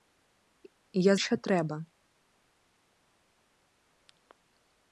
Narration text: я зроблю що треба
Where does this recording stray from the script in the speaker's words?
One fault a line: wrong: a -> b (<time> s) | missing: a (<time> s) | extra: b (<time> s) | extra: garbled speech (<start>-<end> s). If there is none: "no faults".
missing: зроблю (1.1 s)